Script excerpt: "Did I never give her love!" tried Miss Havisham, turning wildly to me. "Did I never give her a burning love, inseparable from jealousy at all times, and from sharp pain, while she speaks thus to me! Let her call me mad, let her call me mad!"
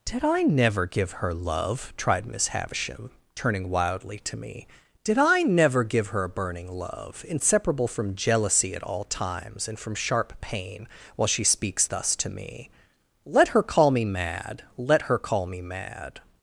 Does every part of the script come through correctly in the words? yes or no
yes